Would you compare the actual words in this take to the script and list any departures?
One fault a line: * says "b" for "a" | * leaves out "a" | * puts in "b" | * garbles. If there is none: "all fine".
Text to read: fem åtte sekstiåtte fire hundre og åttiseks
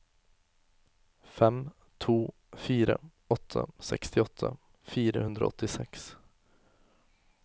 * puts in "to fire"